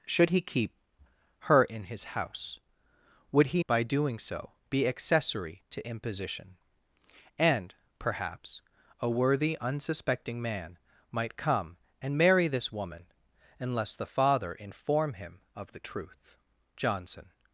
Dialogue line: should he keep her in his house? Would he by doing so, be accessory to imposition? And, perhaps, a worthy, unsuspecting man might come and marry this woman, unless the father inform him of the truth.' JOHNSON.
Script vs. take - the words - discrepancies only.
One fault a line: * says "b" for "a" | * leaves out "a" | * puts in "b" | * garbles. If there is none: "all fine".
all fine